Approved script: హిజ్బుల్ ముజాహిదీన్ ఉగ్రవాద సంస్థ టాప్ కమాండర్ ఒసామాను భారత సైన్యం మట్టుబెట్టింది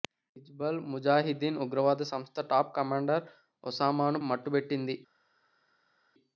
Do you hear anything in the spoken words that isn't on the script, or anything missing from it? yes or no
yes